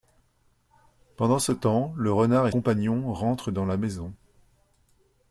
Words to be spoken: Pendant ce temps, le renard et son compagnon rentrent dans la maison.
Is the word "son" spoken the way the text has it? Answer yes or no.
no